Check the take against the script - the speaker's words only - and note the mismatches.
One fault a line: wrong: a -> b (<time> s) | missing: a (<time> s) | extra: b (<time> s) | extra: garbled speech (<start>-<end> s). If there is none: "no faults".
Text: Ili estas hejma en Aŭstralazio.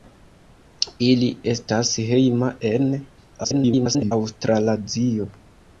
extra: garbled speech (3.4-4.1 s)